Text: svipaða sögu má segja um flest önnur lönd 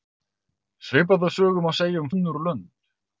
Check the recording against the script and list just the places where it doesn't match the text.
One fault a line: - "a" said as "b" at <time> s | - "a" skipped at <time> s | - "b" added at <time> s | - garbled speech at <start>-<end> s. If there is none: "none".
- "flest" skipped at 2.1 s